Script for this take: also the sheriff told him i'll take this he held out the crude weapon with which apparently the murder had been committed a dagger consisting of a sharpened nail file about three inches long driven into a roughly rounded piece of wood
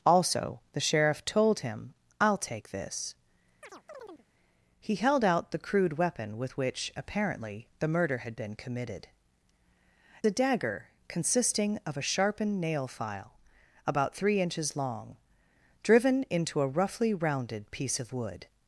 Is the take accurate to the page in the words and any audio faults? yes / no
no